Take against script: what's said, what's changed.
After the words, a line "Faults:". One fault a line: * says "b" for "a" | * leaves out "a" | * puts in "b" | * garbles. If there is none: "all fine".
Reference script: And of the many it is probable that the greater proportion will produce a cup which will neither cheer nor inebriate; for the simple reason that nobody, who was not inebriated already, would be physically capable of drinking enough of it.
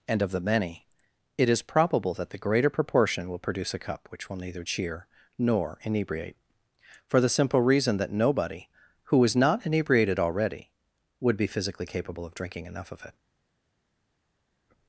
And of the many it is probable that the greater proportion will produce a cup which will neither cheer nor inebriate; for the simple reason that nobody, who is not inebriated already, would be physically capable of drinking enough of it.
Faults:
* says "is" for "was"